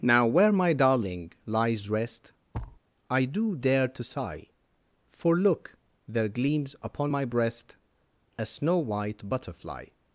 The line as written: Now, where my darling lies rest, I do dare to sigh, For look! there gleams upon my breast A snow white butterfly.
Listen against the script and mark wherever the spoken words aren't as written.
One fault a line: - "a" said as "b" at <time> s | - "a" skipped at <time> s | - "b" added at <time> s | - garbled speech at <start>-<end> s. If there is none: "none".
none